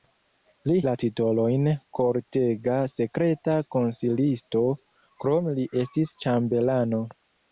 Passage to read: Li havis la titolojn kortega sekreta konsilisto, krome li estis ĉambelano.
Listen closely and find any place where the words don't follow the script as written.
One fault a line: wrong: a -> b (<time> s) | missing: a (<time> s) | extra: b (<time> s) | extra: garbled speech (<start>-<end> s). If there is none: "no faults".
missing: havis (0.8 s)